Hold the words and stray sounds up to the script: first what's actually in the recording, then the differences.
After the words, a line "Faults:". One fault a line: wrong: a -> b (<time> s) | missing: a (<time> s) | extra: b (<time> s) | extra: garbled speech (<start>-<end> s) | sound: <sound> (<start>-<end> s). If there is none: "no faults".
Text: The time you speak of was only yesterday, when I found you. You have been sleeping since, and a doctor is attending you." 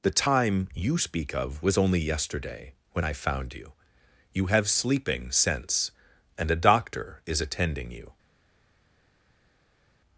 The time you speak of was only yesterday, when I found you. You have sleeping since, and a doctor is attending you."
Faults:
missing: been (4.7 s)